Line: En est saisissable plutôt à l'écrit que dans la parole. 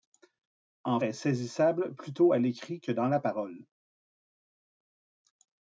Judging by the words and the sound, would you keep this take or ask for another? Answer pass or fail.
pass